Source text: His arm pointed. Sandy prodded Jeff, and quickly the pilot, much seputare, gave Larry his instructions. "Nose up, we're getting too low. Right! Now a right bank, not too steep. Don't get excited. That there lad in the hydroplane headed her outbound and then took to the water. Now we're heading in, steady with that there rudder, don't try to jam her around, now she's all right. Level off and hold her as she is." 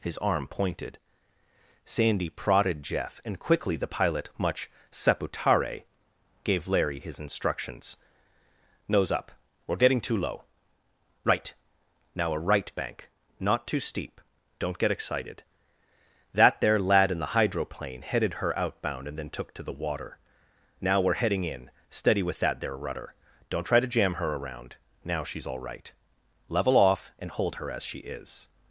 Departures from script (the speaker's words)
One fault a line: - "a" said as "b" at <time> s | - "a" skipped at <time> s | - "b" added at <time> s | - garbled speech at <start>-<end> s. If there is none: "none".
none